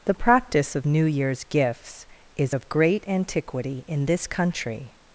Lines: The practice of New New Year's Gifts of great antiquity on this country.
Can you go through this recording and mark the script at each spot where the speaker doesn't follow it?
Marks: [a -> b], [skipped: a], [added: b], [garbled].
The practice of New [skipped: New] Year's Gifts [added: is] of great antiquity [on -> in] this country.